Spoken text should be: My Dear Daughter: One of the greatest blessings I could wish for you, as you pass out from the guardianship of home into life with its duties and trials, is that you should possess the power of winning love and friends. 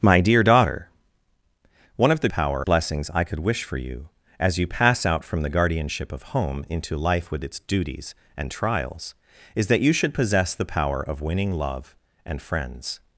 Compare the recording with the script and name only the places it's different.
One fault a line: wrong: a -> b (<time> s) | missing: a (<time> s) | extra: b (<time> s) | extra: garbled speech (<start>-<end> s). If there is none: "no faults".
wrong: greatest -> power (2.3 s)